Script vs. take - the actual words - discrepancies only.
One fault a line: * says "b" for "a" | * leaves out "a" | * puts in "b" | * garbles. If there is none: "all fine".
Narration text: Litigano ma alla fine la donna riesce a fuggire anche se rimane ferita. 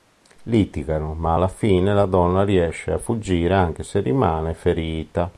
all fine